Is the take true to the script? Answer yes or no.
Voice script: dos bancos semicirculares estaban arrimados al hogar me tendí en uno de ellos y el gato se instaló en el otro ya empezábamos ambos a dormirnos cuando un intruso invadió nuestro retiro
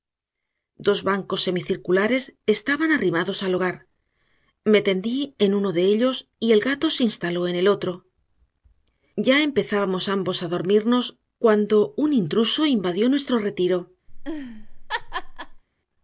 yes